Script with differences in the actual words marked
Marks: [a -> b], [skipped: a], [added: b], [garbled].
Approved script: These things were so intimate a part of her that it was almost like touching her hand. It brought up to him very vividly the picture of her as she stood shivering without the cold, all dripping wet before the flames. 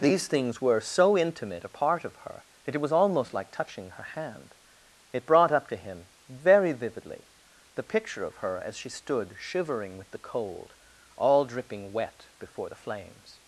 These things were so intimate a part of her that it was almost like touching her hand. It brought up to him very vividly the picture of her as she stood shivering [without -> with] the cold, all dripping wet before the flames.